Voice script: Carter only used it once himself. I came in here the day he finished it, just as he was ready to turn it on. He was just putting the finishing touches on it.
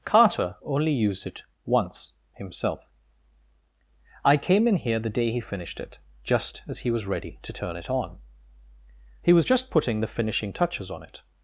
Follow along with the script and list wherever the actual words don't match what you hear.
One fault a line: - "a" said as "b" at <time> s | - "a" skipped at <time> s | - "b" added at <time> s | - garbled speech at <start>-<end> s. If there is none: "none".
none